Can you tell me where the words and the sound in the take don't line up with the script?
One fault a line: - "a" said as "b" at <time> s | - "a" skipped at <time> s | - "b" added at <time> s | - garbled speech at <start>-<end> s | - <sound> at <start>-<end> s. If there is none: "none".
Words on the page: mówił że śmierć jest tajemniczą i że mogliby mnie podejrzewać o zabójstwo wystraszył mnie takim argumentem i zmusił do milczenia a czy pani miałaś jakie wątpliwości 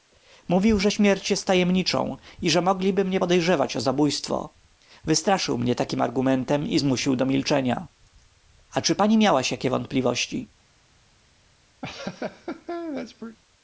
- laugh at 11.8-13.4 s